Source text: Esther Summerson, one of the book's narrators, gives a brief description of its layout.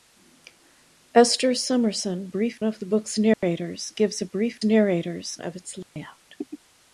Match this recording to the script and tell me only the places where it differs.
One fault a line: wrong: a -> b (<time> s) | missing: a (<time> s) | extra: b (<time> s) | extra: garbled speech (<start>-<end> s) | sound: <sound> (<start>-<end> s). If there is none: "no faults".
wrong: one -> brief (2.3 s)
sound: dropout (3.3-3.4 s)
wrong: description -> narrators (4.6 s)
sound: dropout (5.8-6.0 s)